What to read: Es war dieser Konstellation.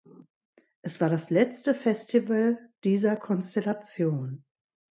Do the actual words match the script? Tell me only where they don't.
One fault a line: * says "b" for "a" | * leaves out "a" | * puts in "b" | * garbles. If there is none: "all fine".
* puts in "das letzte Festival"